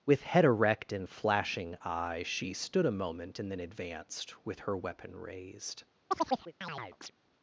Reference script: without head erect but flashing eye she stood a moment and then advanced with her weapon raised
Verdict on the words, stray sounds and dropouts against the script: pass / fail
fail